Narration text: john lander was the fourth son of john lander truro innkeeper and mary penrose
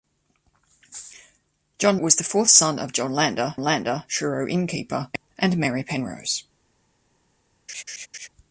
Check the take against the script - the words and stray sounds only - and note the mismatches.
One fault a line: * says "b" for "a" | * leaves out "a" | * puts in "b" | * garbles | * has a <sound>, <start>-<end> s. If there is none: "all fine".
* leaves out "lander"
* puts in "lander"
* has a laugh, 7.7-8.3 s